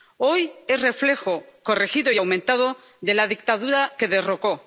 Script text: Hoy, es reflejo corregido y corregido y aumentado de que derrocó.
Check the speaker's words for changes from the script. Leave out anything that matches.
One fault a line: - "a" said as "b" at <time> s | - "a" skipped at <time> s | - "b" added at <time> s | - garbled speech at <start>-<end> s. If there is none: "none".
- "corregido y aumentado de" said as "aumentado de la dictadura" at 2.2 s